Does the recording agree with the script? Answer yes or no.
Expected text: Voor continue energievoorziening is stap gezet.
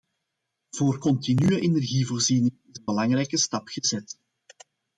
no